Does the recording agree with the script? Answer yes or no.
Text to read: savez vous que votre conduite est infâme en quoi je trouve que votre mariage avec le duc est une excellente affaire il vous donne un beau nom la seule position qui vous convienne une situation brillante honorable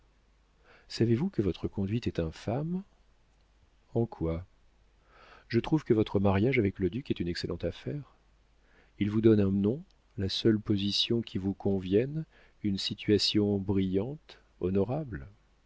no